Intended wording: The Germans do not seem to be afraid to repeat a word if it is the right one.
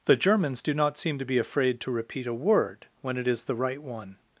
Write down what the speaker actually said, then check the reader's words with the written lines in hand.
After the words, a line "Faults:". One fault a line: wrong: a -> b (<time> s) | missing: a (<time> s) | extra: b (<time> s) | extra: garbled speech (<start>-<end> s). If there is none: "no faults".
The Germans do not seem to be afraid to repeat a word when it is the right one.
Faults:
wrong: if -> when (3.0 s)